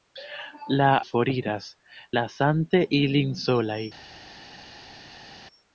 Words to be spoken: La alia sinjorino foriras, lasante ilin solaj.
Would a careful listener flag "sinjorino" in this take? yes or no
yes